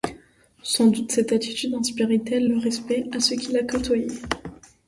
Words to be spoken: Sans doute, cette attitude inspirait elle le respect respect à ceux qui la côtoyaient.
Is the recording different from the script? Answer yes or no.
yes